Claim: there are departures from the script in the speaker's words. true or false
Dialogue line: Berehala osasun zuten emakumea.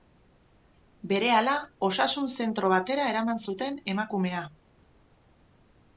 true